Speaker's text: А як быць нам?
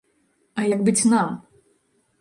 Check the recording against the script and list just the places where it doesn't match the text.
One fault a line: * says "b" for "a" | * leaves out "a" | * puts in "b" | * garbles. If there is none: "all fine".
all fine